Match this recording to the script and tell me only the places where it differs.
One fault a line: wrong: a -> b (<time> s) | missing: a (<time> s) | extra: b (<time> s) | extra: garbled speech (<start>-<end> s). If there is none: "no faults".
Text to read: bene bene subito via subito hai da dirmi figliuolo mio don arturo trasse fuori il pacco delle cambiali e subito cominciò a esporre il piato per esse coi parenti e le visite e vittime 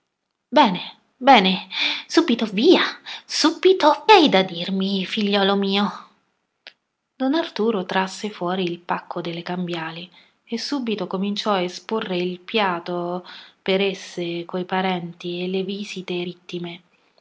no faults